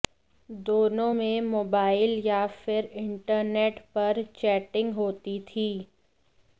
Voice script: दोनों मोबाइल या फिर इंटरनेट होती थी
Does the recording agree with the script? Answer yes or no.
no